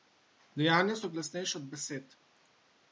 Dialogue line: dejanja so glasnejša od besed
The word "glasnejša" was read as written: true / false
true